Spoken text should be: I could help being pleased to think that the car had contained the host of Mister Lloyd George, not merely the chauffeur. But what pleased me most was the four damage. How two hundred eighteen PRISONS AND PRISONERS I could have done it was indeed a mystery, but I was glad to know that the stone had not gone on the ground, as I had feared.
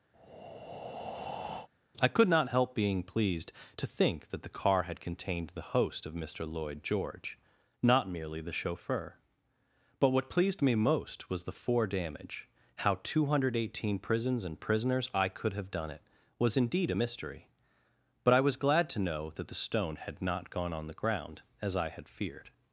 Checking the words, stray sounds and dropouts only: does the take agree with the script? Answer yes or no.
no